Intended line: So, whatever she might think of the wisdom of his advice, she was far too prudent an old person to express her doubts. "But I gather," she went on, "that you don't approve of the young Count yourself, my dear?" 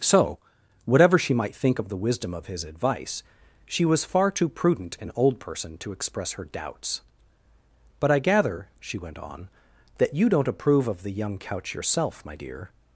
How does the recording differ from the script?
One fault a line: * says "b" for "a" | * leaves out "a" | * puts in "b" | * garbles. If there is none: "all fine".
* says "Couch" for "Count"